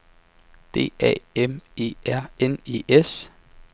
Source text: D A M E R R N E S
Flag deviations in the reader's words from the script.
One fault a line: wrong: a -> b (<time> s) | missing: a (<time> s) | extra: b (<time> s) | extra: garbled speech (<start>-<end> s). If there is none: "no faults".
missing: R (2.3 s)